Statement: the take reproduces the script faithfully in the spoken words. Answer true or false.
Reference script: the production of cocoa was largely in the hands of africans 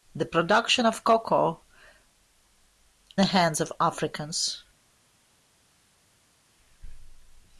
false